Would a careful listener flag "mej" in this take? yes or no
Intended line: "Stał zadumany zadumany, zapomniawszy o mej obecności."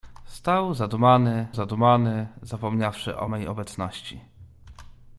no